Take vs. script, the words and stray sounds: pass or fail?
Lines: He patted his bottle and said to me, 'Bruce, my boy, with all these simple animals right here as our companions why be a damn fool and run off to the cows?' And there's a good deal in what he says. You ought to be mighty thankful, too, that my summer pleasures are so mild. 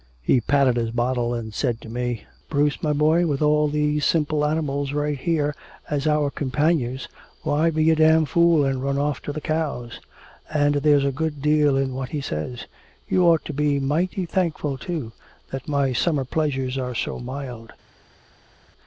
pass